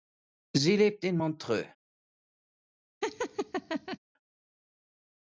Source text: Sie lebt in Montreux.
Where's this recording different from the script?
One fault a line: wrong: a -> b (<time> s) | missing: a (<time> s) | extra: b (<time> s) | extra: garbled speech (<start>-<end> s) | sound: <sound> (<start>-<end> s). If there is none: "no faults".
sound: laugh (3.0-4.0 s)